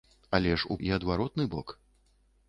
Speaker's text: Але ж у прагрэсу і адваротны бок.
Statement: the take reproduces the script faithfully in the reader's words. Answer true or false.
false